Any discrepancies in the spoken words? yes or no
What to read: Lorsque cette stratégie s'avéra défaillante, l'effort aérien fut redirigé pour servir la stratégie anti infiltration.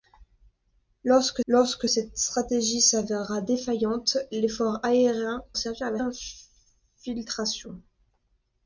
yes